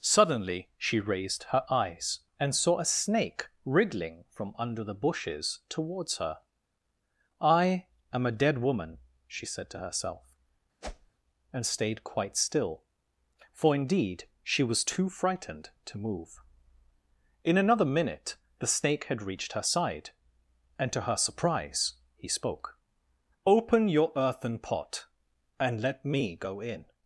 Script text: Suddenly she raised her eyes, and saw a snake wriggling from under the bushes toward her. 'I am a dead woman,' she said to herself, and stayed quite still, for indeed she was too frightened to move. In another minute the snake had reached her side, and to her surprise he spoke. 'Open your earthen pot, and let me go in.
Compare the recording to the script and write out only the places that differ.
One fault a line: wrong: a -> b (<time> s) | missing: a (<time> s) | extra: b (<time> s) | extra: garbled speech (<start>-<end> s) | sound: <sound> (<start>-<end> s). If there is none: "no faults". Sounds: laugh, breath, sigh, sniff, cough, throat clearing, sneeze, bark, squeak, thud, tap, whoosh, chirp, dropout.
wrong: toward -> towards (5.7 s)
sound: whoosh (10.8-11.1 s)